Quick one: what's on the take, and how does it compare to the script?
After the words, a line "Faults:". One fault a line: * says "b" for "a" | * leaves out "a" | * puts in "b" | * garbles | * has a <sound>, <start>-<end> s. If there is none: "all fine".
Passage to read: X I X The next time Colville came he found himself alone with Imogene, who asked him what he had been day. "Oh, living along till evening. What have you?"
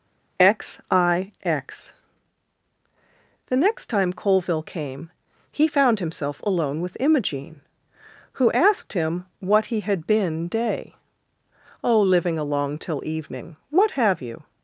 X I X The next time Colville came he found himself alone with Imogene, who asked him what he had been day. "Oh, living along till evening. What have you?"
Faults:
all fine